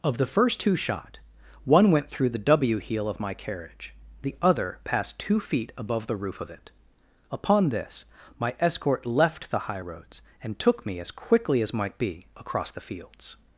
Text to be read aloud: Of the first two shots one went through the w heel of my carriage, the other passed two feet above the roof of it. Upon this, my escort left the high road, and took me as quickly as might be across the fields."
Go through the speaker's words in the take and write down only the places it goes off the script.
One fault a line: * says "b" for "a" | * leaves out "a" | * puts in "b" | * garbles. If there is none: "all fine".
* says "shot" for "shots"
* says "roads" for "road"